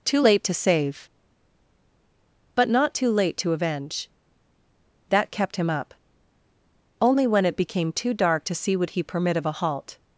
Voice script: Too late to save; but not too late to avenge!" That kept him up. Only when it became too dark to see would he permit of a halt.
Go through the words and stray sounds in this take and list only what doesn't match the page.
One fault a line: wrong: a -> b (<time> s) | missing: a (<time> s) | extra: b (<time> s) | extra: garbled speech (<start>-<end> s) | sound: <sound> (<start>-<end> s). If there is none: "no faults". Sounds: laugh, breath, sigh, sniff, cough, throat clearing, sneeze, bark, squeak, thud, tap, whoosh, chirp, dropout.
no faults